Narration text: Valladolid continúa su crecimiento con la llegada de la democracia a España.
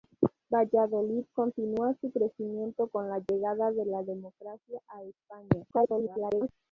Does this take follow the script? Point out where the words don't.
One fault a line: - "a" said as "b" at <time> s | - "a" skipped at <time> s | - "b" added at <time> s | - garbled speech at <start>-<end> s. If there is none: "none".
- garbled speech at 5.7-6.5 s